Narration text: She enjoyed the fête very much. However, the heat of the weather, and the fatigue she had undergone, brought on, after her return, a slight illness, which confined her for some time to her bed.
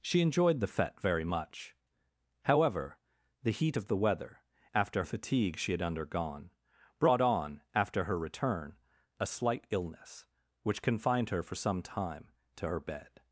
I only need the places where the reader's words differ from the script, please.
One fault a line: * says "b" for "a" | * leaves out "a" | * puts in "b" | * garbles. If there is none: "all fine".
* says "after" for "and"